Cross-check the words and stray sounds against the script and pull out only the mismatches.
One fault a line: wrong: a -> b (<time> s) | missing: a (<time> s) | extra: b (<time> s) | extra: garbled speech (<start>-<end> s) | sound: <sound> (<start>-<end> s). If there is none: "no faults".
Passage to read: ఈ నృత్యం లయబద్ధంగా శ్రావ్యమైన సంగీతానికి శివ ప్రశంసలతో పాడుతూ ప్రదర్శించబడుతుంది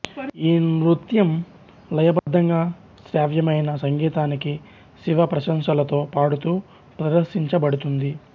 sound: dropout (2.2-2.3 s)